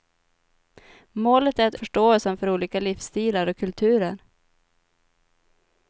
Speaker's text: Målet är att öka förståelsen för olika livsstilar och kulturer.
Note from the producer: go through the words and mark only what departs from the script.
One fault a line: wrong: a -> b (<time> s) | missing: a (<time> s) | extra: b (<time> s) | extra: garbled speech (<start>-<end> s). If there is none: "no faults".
missing: öka (1.8 s)